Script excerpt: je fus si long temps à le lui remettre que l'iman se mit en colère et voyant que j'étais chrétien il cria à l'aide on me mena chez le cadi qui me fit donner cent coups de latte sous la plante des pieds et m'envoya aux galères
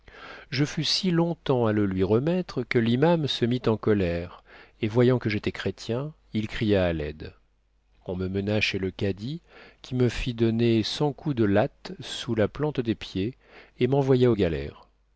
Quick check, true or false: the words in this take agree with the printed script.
true